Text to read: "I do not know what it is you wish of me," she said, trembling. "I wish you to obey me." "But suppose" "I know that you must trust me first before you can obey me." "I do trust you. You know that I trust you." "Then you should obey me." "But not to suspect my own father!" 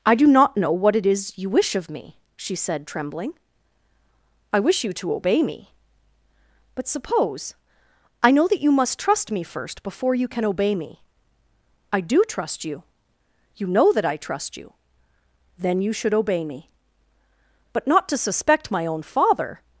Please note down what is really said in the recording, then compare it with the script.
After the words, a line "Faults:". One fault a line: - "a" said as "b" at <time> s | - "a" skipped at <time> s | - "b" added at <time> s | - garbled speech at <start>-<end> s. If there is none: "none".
"I do not know what it is you wish of me," she said, trembling. "I wish you to obey me." "But suppose" "I know that you must trust me first before you can obey me." "I do trust you. You know that I trust you." "Then you should obey me." "But not to suspect my own father!"
Faults:
none